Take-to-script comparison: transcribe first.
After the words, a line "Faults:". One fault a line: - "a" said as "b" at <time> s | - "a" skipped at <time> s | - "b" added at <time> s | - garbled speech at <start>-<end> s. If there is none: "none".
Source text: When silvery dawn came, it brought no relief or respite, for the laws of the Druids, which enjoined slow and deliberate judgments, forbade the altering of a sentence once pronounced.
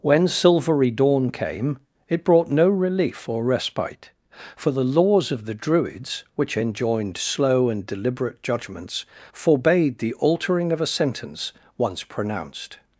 When silvery dawn came, it brought no relief or respite, for the laws of the Druids, which enjoined slow and deliberate judgments, forbade the altering of a sentence once pronounced.
Faults:
none